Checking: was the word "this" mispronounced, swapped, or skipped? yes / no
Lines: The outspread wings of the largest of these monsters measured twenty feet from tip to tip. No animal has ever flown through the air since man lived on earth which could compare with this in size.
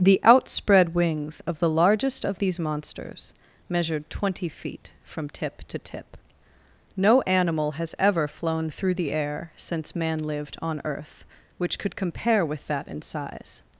yes